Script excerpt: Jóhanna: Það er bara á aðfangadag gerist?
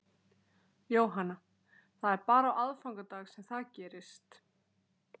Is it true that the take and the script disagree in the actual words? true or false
true